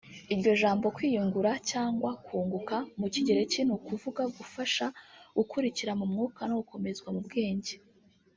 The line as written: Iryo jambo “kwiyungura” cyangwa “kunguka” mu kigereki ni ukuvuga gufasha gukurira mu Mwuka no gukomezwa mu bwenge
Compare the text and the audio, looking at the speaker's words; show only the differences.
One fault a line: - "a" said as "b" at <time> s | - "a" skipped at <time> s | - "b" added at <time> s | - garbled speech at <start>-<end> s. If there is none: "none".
none